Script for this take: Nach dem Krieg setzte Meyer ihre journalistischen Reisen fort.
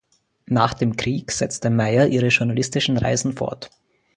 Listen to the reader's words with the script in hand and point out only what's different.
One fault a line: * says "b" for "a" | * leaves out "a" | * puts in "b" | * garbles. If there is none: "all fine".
all fine